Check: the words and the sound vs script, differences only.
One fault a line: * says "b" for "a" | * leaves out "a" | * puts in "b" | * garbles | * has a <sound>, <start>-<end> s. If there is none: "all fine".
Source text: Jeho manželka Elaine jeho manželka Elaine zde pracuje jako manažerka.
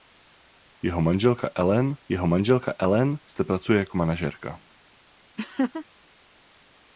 * has a laugh, 5.4-5.9 s